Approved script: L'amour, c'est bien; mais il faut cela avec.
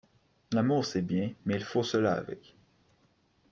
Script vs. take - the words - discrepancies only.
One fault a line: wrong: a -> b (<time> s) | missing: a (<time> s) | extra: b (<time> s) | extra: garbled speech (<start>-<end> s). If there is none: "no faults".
no faults